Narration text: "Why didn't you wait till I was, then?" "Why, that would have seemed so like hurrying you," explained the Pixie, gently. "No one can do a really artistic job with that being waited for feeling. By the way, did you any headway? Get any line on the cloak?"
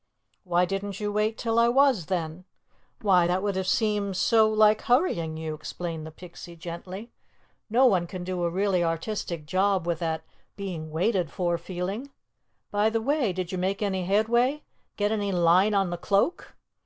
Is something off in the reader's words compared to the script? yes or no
yes